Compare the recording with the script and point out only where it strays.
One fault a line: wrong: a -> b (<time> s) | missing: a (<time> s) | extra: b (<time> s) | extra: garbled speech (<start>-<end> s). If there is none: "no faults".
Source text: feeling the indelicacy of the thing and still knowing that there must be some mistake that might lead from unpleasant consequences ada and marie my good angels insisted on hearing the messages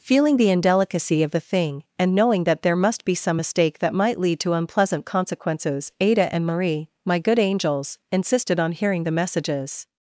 missing: still (2.1 s)
wrong: from -> to (4.4 s)